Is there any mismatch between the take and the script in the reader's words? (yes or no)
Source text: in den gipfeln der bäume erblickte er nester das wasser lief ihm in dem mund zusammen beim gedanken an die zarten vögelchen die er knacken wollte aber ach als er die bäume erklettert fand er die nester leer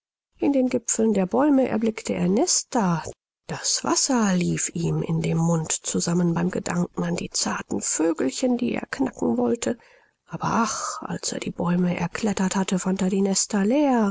yes